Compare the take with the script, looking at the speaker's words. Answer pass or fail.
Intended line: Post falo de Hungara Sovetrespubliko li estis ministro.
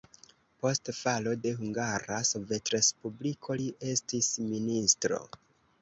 pass